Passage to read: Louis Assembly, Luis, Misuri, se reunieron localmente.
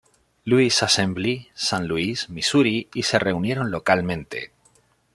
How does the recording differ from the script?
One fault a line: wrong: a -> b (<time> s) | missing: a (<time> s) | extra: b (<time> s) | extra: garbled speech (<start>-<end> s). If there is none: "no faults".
extra: San (1.5 s)
extra: y (2.9 s)